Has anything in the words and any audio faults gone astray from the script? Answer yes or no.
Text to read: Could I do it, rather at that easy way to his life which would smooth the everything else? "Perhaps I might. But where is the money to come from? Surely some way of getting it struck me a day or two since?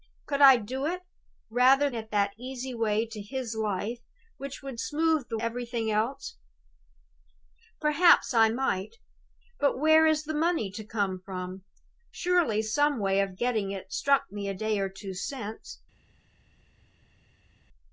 no